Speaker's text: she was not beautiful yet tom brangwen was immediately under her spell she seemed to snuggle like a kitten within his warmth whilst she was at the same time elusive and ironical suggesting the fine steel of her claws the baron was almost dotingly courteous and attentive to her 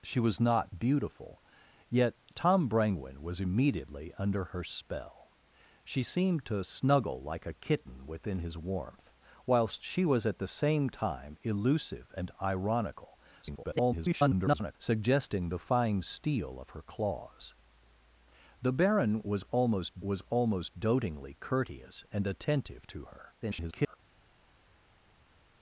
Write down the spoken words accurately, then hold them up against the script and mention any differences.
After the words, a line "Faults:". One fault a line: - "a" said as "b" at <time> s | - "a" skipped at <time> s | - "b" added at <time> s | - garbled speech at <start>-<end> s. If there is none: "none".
she was not beautiful yet tom brangwen was immediately under her spell she seemed to snuggle like a kitten within his warmth whilst she was at the same time elusive and ironical [garbled] suggesting the fine steel of her claws the baron was almost was almost dotingly courteous and attentive to her [garbled]
Faults:
- garbled speech at 13.4-14.7 s
- "was almost" added at 20.0 s
- garbled speech at 23.4-24.0 s